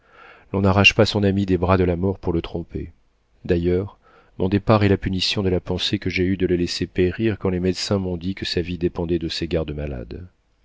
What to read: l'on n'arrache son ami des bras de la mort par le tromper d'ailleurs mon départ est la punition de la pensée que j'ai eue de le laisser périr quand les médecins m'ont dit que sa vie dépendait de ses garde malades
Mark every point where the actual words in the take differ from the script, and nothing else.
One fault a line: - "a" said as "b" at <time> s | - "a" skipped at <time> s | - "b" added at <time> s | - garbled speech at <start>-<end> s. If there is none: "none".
- "pas" added at 0.9 s
- "par" said as "pour" at 2.2 s